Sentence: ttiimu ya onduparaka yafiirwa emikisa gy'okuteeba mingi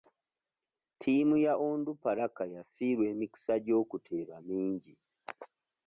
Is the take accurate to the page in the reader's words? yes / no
yes